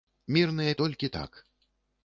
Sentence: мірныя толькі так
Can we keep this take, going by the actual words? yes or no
yes